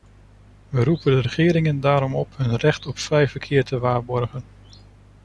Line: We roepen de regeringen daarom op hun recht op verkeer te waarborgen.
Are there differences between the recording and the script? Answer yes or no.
yes